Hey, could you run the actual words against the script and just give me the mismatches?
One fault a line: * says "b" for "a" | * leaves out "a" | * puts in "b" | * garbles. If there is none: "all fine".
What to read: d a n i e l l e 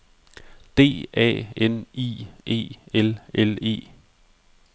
all fine